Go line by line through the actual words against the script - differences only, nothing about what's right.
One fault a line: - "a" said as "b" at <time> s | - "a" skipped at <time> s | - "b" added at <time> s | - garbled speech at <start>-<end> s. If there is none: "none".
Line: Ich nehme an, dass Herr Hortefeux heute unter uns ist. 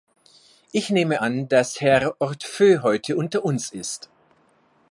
none